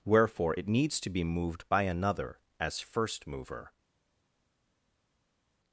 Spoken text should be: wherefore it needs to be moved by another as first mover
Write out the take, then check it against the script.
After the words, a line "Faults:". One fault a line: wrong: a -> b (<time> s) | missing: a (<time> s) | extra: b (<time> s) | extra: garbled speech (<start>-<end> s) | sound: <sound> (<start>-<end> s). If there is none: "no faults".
wherefore it needs to be moved by another as first mover
Faults:
no faults